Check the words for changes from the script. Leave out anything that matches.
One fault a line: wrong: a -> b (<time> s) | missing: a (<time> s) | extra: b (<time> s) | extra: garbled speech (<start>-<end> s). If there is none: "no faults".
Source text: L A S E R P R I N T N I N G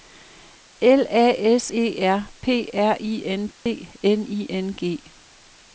no faults